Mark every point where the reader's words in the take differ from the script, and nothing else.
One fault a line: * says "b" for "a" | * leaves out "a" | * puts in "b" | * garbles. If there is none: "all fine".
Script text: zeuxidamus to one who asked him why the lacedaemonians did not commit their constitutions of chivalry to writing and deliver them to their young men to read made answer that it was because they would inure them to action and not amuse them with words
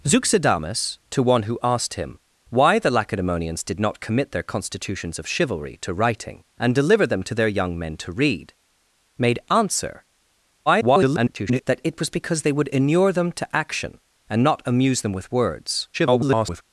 * garbles
* garbles